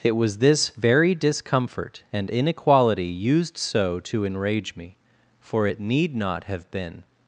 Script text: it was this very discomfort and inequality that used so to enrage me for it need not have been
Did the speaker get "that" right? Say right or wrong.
wrong